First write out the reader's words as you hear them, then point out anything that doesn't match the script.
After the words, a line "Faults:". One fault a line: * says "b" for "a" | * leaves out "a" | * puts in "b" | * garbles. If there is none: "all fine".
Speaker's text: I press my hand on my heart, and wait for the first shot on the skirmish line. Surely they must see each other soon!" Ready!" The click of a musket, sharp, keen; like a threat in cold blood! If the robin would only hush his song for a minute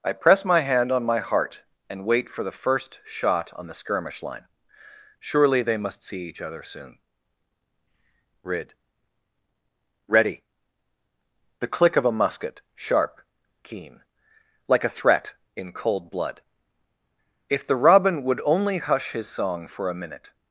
I press my hand on my heart, and wait for the first shot on the skirmish line. Surely they must see each other soon!" rid Ready!" The click of a musket, sharp, keen; like a threat in cold blood! If the robin would only hush his song for a minute
Faults:
* puts in "rid"